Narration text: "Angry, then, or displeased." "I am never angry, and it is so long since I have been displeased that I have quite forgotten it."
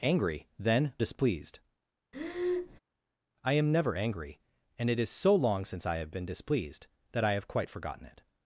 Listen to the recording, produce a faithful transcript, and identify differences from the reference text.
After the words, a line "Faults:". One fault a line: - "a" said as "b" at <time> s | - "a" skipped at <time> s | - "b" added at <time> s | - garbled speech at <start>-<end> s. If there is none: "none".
"Angry, then, displeased." "I am never angry, and it is so long since I have been displeased that I have quite forgotten it."
Faults:
- "or" skipped at 0.9 s